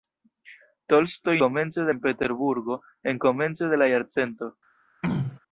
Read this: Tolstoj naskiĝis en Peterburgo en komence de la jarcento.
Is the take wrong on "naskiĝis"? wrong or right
wrong